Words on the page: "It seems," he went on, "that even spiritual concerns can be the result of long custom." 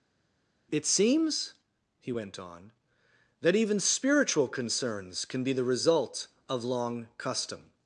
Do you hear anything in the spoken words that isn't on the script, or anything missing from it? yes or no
no